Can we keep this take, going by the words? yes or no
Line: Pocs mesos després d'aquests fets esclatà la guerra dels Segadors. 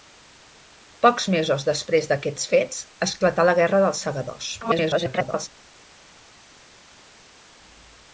no